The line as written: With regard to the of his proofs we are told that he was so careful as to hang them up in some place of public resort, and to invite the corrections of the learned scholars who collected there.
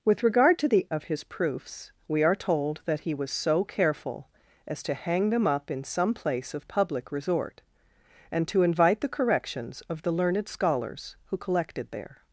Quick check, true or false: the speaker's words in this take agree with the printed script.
true